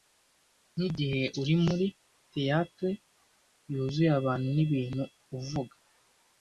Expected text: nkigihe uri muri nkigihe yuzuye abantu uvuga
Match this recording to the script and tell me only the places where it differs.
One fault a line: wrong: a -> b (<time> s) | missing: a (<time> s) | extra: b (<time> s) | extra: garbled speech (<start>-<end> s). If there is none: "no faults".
wrong: nkigihe -> theatre (2.3 s)
extra: nibintu (4.5 s)